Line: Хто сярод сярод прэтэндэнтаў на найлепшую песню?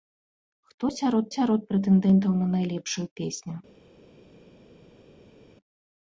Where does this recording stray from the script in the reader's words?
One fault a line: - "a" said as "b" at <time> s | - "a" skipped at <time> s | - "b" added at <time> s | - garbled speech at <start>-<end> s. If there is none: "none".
none